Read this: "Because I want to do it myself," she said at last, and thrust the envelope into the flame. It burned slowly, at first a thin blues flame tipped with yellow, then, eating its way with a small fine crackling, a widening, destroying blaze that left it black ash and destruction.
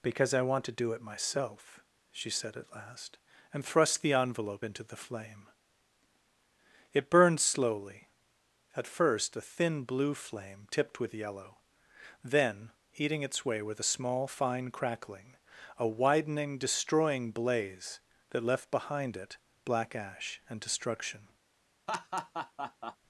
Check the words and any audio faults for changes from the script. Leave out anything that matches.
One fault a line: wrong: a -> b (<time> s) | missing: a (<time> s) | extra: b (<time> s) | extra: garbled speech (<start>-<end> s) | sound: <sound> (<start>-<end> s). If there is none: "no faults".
wrong: blues -> blue (9.8 s)
extra: behind (18.7 s)
sound: laugh (21.9-23.0 s)